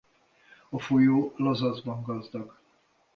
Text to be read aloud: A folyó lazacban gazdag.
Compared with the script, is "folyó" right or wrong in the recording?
right